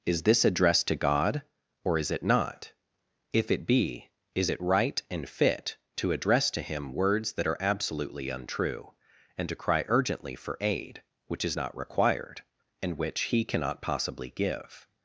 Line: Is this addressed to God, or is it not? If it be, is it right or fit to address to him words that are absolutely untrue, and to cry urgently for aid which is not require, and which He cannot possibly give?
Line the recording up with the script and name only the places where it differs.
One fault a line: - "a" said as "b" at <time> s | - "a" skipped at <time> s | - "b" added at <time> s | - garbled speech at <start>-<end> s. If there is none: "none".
- "or" said as "and" at 5.1 s
- "require" said as "required" at 11.8 s